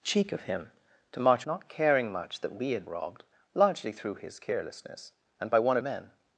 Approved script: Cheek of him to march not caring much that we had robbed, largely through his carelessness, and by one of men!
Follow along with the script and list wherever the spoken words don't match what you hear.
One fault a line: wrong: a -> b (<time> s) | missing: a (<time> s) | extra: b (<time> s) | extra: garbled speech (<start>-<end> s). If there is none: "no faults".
no faults